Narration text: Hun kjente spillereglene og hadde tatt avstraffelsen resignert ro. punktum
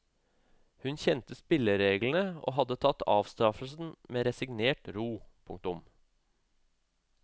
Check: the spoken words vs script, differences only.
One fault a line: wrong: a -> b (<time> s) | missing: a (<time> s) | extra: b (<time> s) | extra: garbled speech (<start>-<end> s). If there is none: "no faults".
extra: med (4.2 s)